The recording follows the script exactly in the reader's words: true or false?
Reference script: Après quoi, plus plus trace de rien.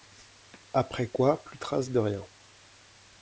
false